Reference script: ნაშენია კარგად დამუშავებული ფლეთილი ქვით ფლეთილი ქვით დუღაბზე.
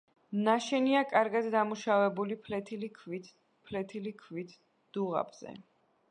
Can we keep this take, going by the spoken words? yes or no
yes